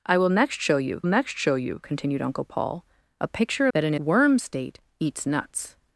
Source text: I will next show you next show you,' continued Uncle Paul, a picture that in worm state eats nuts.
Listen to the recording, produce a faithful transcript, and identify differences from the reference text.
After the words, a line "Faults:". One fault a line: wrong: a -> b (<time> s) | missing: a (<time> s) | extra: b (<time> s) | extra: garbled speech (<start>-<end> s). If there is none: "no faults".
I will next show you next show you,' continued Uncle Paul, a picture that in worm state eats nuts.
Faults:
no faults